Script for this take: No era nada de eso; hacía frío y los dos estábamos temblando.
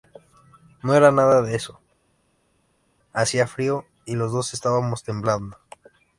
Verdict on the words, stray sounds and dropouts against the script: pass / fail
pass